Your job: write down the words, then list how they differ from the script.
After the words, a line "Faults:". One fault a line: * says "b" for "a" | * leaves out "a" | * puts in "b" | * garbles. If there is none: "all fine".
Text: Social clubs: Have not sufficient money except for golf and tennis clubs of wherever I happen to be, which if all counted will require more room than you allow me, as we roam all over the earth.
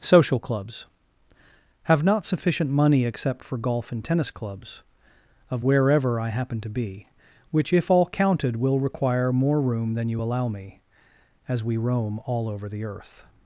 Social clubs: Have not sufficient money except for golf and tennis clubs of wherever I happen to be, which if all counted will require more room than you allow me, as we roam all over the earth.
Faults:
all fine